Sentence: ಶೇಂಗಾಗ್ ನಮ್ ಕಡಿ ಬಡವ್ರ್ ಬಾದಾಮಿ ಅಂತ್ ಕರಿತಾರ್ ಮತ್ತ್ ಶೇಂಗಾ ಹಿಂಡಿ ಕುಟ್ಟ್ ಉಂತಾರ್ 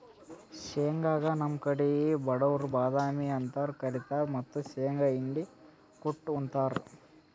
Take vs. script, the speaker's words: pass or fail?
pass